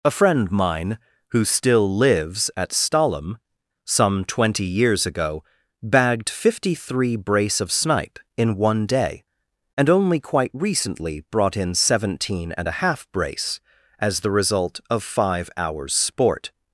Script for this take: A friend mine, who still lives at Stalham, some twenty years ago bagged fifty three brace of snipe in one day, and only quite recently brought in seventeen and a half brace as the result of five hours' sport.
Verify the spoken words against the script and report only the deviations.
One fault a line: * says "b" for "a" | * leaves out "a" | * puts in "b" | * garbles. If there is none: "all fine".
all fine